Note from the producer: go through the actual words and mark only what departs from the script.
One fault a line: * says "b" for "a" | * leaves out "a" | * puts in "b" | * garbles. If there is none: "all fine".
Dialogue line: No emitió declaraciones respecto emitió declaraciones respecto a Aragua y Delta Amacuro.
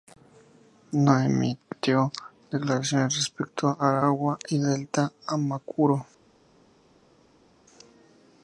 * leaves out "emitió declaraciones respecto"